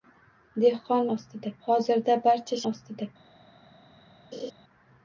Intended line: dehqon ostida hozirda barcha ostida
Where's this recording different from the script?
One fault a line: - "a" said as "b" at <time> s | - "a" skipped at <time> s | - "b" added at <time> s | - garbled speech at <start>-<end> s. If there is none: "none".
none